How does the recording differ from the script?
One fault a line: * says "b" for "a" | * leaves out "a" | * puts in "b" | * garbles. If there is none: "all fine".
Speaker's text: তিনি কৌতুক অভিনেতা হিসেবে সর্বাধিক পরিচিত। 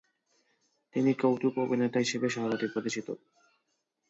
all fine